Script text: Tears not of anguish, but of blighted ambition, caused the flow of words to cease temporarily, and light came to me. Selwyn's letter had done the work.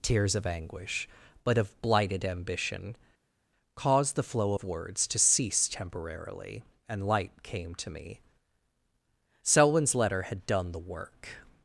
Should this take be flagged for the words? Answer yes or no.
yes